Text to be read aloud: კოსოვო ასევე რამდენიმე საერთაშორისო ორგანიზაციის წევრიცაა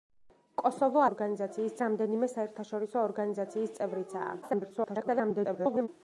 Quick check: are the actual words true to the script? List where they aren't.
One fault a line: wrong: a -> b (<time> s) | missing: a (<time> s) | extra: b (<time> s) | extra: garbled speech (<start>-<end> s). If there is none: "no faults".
wrong: ასევე -> ორგანიზაციის (1.1 s)
extra: garbled speech (4.4-5.9 s)